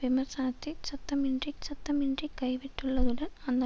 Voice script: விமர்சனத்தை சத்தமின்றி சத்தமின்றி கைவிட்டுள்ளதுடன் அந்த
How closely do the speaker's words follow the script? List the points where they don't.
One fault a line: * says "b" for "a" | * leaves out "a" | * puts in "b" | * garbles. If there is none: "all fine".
all fine